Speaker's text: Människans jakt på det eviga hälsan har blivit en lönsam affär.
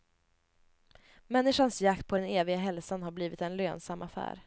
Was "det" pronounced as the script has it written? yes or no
no